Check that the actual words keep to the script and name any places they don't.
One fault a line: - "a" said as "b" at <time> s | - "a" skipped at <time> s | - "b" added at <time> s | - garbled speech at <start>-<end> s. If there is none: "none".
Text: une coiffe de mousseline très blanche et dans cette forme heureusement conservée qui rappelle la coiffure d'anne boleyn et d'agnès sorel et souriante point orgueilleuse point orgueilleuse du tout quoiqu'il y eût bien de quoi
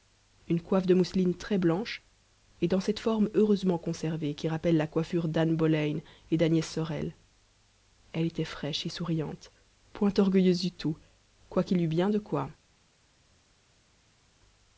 - "elle était fraîche" added at 8.1 s
- "point orgueilleuse" skipped at 10.6 s